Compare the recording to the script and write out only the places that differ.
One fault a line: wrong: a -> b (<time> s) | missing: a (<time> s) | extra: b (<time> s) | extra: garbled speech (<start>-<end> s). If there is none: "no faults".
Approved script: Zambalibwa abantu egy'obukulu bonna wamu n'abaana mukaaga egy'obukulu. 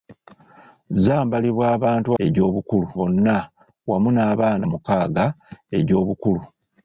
no faults